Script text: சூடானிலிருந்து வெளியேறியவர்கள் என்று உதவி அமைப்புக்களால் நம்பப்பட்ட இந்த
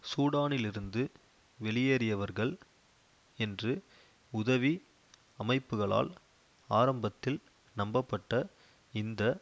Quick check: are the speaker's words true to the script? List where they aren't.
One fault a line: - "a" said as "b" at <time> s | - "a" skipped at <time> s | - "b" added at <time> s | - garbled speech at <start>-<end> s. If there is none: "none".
- "ஆரம்பத்தில்" added at 6.7 s